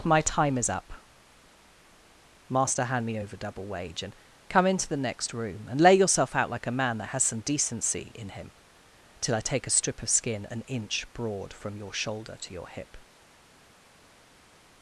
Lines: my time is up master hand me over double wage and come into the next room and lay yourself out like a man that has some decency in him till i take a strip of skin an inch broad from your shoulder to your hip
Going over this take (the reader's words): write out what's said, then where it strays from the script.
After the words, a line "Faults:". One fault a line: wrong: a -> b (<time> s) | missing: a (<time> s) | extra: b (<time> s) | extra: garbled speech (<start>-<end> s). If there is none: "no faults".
my time is up master hand me over double wage and come into the next room and lay yourself out like a man that has some decency in him till i take a strip of skin an inch broad from your shoulder to your hip
Faults:
no faults